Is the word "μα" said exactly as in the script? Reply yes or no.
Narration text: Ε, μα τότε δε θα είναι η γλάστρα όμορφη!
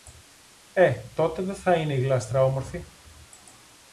no